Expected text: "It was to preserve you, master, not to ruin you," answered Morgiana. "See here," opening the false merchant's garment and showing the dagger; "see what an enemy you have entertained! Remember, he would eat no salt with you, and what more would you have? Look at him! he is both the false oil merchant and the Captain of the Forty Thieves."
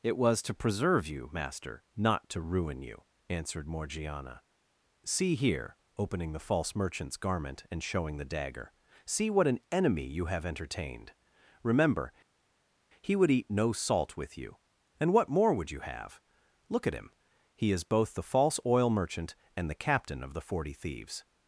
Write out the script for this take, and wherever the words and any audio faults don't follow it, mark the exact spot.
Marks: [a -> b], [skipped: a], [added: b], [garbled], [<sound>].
"It was to preserve you, master, not to ruin you," answered Morgiana. "See here," opening the false merchant's garment and showing the dagger; "see what an enemy you have entertained! Remember, he would eat no salt with you, and what more would you have? Look at him! he is both the false oil merchant and the Captain of the Forty Thieves."